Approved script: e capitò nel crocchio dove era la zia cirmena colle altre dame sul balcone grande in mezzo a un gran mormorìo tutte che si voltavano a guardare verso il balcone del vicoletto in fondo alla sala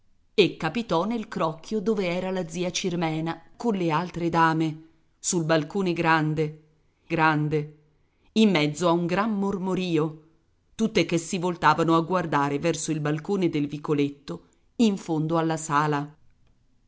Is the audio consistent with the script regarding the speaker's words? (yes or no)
no